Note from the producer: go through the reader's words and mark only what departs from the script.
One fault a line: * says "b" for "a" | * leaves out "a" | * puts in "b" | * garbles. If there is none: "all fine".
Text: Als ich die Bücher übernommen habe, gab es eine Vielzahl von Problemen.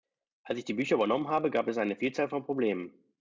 all fine